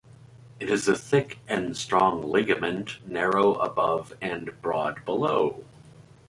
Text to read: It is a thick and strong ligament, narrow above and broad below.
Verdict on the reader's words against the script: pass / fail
pass